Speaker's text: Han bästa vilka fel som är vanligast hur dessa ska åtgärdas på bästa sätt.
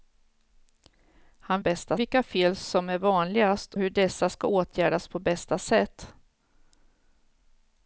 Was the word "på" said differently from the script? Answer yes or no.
no